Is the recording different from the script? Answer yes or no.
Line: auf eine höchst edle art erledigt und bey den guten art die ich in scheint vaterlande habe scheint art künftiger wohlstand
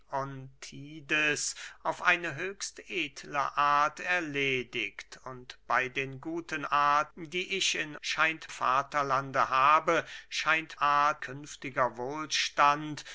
no